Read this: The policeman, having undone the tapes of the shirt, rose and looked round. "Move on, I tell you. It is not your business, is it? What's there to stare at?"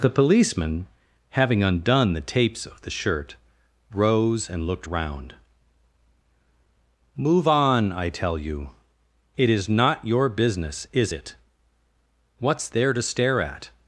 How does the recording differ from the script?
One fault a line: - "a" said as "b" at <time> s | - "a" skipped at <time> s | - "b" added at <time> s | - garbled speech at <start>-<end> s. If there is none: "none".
none